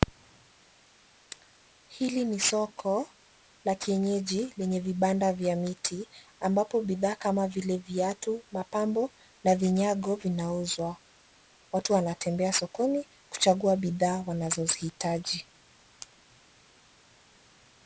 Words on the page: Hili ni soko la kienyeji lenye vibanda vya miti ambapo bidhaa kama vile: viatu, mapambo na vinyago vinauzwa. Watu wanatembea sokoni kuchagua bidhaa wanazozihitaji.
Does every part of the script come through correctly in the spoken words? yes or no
yes